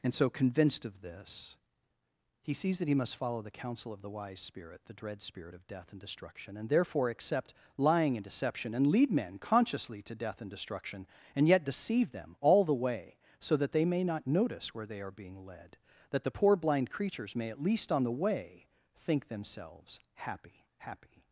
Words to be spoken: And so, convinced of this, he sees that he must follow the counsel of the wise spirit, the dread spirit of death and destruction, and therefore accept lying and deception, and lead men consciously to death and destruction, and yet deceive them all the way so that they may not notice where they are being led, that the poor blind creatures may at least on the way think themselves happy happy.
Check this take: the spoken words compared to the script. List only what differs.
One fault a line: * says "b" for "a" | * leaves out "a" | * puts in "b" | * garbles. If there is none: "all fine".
all fine